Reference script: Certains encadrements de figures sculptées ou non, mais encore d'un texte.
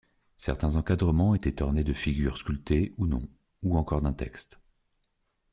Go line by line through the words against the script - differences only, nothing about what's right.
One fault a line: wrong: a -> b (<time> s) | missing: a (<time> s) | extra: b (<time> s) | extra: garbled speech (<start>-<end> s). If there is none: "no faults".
extra: étaient ornés (1.3 s)
wrong: mais -> ou (3.6 s)